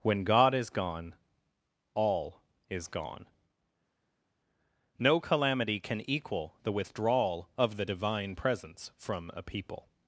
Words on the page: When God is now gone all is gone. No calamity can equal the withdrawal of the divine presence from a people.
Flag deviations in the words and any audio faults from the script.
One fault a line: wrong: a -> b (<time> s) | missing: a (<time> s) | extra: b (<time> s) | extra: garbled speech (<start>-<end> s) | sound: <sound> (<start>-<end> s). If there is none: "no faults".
missing: now (0.7 s)